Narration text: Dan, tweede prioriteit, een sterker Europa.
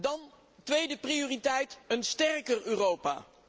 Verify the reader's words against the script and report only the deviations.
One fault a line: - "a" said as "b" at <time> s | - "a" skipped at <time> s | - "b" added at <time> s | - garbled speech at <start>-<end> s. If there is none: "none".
none